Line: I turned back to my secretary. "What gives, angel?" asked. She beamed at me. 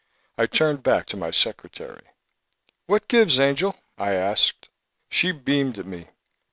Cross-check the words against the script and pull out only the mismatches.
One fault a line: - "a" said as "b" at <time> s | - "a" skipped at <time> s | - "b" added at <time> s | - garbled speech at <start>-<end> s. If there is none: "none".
- "I" added at 4.0 s